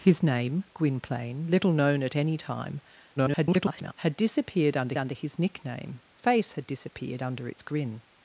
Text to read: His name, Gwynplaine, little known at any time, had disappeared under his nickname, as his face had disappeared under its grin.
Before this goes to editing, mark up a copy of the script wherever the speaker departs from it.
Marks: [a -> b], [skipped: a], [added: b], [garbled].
His name, Gwynplaine, little known at any time, [garbled] had disappeared under [added: under] his nickname, [skipped: as his] face had disappeared under its grin.